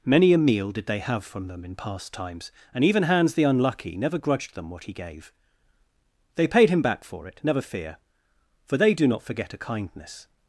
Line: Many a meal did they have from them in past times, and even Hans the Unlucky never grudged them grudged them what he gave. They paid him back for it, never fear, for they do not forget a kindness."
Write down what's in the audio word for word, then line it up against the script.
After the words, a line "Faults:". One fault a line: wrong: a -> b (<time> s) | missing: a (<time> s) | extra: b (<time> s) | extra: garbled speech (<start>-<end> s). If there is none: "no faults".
Many a meal did they have from them in past times, and even Hans the Unlucky never grudged them what he gave. They paid him back for it, never fear, for they do not forget a kindness."
Faults:
missing: grudged them (4.7 s)